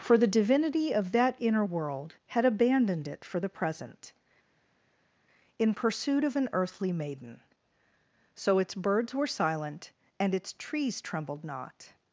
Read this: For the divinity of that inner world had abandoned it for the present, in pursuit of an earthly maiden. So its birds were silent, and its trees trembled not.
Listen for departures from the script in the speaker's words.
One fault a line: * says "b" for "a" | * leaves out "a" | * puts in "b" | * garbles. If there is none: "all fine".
all fine